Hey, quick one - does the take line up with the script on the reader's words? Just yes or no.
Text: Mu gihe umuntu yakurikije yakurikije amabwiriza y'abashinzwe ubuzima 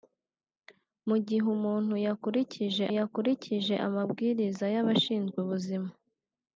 yes